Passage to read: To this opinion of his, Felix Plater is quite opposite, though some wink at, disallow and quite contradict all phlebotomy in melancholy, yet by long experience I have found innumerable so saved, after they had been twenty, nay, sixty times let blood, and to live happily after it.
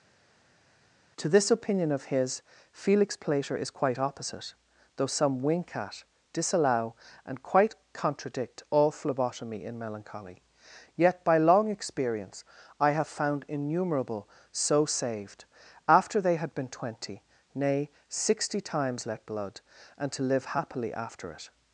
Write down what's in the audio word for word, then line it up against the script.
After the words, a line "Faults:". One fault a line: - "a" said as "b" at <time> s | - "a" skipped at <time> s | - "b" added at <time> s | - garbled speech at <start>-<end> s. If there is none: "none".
To this opinion of his, Felix Plater is quite opposite, though some wink at, disallow and quite contradict all phlebotomy in melancholy, yet by long experience I have found innumerable so saved, after they had been twenty, nay, sixty times let blood, and to live happily after it.
Faults:
none